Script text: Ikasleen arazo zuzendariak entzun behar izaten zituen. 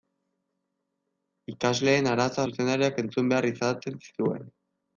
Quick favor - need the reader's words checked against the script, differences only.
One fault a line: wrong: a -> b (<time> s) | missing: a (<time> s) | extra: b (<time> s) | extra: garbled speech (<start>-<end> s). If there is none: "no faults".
no faults